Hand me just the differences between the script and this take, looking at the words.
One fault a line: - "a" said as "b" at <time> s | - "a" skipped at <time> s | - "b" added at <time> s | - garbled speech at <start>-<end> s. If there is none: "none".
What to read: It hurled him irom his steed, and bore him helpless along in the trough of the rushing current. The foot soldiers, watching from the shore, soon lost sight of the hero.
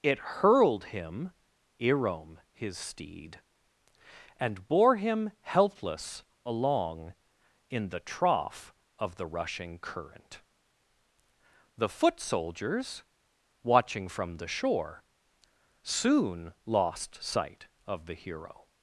none